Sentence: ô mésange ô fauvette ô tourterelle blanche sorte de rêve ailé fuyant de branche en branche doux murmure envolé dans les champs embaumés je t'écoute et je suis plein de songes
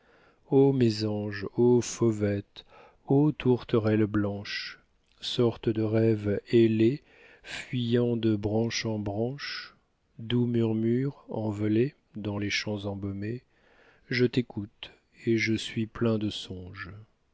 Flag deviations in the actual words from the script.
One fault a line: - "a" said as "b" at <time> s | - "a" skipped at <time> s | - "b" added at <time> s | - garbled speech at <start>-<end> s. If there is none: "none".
none